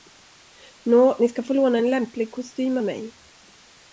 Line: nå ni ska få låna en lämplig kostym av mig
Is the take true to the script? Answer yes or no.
yes